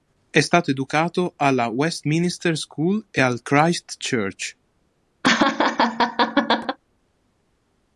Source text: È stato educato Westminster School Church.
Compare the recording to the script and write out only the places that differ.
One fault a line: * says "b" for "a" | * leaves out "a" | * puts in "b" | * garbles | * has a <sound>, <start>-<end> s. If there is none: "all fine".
* puts in "alla"
* puts in "e al Christ"
* has a laugh, 5.2-6.8 s